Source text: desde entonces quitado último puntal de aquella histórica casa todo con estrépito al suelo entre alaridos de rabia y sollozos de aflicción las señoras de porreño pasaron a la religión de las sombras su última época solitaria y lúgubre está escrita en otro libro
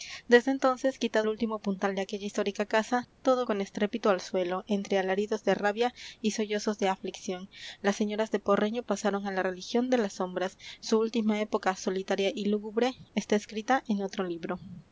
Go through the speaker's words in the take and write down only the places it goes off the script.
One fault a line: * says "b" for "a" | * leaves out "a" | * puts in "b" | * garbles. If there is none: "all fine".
all fine